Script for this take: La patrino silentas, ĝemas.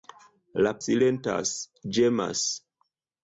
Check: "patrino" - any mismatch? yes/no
yes